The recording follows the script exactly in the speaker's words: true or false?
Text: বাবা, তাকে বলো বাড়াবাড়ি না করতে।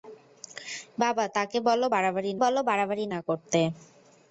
false